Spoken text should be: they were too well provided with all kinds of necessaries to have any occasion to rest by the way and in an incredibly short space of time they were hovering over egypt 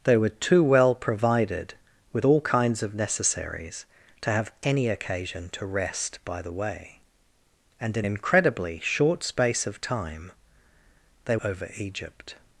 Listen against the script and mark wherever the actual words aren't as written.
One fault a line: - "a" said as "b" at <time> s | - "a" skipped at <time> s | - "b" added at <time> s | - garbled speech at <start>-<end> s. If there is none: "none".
- "an" skipped at 8.1 s
- "were hovering" skipped at 11.4 s